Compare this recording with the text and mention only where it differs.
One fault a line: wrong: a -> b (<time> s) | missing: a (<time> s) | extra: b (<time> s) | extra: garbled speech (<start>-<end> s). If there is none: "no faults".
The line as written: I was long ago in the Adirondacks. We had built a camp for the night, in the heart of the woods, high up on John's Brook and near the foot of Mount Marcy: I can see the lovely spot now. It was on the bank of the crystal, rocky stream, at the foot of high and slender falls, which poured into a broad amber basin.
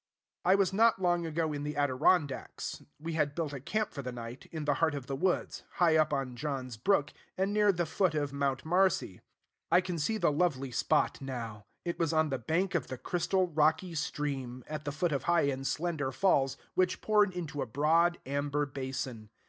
extra: not (0.7 s)